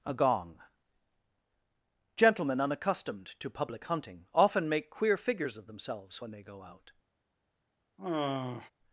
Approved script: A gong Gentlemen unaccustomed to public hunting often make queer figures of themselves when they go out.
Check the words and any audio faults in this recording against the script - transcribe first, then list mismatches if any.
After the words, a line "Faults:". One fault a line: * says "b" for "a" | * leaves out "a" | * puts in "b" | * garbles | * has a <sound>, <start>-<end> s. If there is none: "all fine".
A gong Gentlemen unaccustomed to public hunting often make queer figures of themselves when they go out.
Faults:
* has a sigh, 8.0-8.7 s